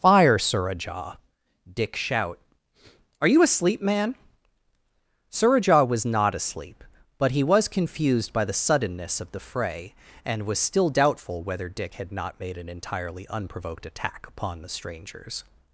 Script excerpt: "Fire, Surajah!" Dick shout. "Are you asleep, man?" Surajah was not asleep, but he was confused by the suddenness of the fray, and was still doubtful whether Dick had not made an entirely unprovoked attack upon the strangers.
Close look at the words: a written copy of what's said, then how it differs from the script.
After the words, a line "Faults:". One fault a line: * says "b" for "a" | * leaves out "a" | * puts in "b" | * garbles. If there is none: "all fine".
"Fire, Surajah!" Dick shout. "Are you asleep, man?" Surajah was not asleep, but he was confused by the suddenness of the fray, and was still doubtful whether Dick had not made an entirely unprovoked attack upon the strangers.
Faults:
all fine